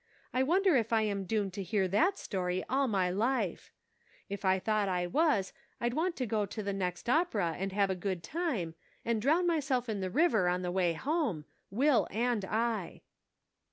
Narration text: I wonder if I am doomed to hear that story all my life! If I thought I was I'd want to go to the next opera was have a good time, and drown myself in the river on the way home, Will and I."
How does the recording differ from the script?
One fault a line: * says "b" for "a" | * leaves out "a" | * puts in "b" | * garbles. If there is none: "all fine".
* says "and" for "was"